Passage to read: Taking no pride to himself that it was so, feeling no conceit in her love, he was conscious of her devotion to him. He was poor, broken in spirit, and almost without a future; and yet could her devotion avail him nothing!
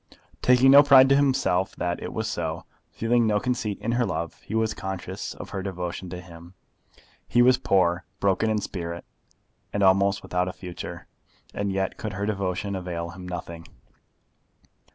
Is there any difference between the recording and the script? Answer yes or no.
no